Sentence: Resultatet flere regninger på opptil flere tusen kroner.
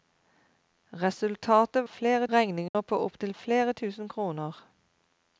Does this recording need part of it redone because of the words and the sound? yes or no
yes